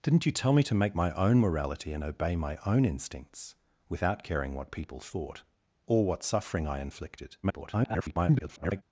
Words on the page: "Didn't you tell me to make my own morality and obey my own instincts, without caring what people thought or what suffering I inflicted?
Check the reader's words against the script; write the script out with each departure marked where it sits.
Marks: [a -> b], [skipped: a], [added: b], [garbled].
"Didn't you tell me to make my own morality and obey my own instincts, without caring what people thought or what suffering I inflicted? [garbled]